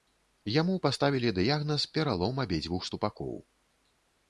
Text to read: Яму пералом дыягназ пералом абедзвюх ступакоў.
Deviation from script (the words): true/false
true